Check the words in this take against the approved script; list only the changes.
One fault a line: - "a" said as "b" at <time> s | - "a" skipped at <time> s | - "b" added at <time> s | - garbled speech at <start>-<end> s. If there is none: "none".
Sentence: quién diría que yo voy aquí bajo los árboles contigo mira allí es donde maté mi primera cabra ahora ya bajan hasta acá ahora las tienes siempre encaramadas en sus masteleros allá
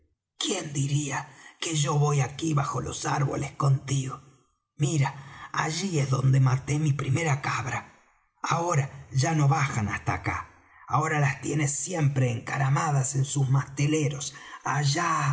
- "no" added at 9.3 s